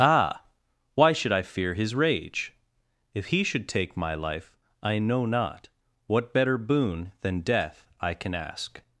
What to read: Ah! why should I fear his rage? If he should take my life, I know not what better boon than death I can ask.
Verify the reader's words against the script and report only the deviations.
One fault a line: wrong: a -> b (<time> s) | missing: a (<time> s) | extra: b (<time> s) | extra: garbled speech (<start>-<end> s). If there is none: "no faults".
no faults